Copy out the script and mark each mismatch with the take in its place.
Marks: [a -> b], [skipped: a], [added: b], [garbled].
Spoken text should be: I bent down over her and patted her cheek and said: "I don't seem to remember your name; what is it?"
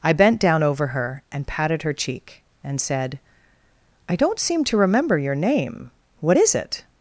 I bent down over her and patted her cheek and said: "I don't seem to remember your name; what is it?"